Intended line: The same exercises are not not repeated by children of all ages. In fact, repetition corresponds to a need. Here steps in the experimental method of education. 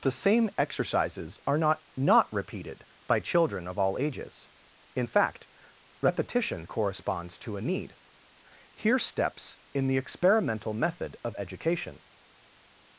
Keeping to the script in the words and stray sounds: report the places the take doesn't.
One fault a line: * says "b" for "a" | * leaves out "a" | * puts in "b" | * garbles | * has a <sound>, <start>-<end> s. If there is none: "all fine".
all fine